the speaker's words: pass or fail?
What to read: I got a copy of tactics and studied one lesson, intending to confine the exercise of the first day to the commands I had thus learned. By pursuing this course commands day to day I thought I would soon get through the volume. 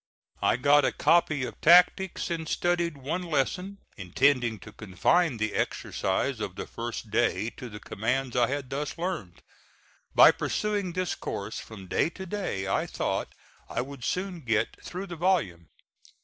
fail